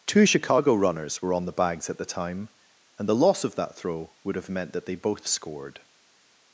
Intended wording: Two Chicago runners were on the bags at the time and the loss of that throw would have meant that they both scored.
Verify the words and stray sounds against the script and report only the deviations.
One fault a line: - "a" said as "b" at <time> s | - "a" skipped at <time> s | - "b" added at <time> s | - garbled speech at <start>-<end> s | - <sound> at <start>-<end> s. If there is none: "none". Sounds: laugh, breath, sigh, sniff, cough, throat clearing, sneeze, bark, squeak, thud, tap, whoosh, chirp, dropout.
none